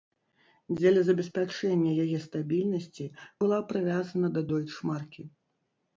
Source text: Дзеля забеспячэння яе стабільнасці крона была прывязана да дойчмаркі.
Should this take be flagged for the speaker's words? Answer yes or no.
yes